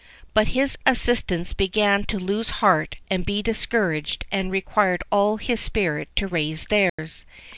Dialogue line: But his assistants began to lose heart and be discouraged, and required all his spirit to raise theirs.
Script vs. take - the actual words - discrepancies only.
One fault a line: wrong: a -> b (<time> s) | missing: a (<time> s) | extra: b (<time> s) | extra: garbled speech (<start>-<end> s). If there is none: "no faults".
no faults